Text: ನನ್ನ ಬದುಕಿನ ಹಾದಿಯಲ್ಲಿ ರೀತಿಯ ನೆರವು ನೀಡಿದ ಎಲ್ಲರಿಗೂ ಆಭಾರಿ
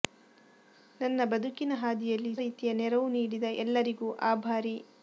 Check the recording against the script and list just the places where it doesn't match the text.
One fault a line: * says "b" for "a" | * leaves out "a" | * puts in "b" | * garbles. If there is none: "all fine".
all fine